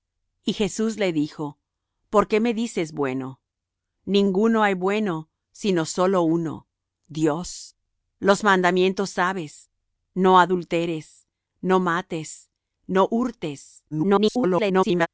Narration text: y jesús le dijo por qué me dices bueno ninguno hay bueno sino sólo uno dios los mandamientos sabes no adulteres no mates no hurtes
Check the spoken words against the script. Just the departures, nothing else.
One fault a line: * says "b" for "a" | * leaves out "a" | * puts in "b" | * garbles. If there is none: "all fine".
* garbles